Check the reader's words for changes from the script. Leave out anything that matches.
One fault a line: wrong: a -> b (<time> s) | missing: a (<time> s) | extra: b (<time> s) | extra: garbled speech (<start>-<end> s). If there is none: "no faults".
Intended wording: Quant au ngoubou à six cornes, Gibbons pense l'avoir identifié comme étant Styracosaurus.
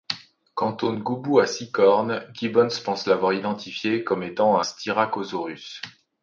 no faults